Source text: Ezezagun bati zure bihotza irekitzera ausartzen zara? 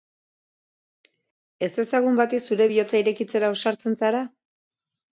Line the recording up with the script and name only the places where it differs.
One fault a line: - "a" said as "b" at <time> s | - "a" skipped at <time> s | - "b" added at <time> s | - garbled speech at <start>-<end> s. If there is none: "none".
none